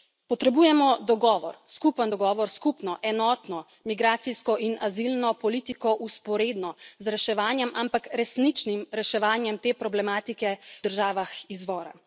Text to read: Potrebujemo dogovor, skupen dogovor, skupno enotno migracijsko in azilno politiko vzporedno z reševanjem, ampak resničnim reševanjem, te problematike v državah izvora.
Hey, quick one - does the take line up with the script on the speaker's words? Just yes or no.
no